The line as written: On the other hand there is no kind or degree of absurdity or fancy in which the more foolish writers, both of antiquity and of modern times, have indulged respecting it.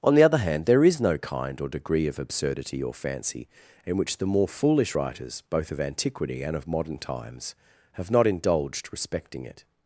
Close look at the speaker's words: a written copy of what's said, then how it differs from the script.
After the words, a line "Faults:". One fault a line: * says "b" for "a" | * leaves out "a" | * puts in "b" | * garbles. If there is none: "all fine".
On the other hand there is no kind or degree of absurdity or fancy in which the more foolish writers, both of antiquity and of modern times, have not indulged respecting it.
Faults:
* puts in "not"